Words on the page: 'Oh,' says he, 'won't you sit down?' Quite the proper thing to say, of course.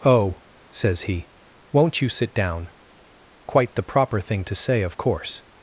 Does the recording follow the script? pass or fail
pass